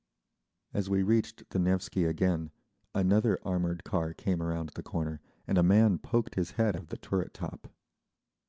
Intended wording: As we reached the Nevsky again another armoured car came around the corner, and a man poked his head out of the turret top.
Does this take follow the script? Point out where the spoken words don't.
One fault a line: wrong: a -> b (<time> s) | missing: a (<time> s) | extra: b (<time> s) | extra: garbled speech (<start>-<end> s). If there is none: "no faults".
missing: out (6.8 s)